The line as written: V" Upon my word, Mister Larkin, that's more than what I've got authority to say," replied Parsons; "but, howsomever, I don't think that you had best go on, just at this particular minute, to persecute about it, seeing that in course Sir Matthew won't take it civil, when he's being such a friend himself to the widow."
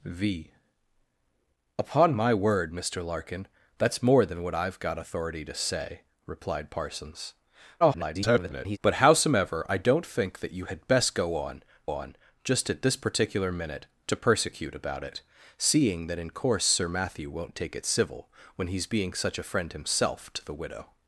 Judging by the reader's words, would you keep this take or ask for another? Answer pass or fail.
fail